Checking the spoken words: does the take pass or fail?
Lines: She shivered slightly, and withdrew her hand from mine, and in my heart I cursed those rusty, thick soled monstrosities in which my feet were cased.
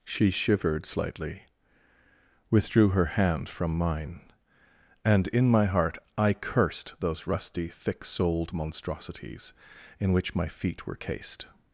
fail